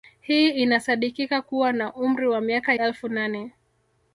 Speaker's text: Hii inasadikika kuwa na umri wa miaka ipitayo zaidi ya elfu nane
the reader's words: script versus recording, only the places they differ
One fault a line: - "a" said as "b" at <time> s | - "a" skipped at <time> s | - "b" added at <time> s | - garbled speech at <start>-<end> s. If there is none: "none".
- "ipitayo zaidi ya" skipped at 2.7 s